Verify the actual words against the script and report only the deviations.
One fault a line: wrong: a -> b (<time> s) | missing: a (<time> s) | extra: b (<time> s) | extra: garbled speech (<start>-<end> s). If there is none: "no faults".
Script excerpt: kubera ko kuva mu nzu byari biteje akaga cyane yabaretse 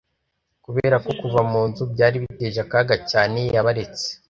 no faults